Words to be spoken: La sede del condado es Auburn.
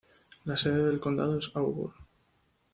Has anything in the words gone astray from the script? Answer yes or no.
no